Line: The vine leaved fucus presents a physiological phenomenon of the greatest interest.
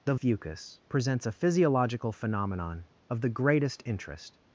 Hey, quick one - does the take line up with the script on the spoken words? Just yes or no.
no